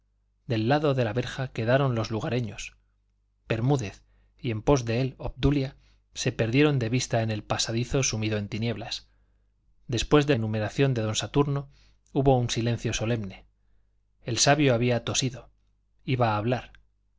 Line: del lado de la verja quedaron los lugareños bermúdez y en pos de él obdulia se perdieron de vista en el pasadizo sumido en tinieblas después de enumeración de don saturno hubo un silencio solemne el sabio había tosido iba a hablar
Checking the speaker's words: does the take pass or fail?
pass